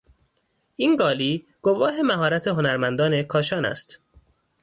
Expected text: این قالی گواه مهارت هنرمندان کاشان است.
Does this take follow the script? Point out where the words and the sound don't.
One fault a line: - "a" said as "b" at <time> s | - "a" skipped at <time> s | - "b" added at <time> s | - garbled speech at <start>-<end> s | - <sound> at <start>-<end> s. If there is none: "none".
none